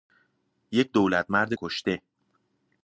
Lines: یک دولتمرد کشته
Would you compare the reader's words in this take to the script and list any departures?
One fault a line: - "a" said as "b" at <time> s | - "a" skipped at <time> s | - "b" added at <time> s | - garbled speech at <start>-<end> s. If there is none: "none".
none